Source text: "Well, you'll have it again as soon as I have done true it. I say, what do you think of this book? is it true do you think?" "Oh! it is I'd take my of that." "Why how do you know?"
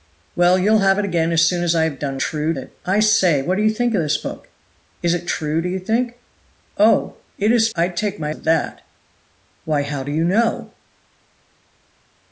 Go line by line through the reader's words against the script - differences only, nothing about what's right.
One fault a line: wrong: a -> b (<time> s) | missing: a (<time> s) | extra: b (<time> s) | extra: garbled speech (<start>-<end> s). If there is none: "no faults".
no faults